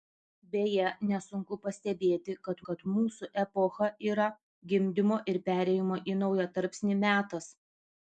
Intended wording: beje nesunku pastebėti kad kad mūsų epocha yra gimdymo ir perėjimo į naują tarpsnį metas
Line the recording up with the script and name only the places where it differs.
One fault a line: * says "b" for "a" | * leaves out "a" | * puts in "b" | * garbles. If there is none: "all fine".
all fine